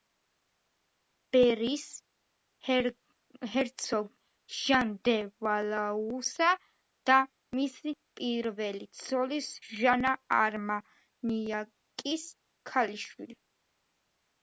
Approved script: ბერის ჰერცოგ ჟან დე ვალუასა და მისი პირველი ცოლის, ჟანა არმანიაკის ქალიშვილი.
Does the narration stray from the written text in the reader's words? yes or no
no